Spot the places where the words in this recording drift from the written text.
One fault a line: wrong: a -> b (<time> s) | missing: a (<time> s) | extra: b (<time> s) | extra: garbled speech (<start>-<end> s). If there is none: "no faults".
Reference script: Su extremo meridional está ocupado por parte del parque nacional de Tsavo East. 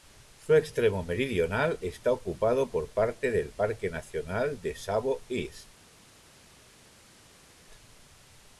no faults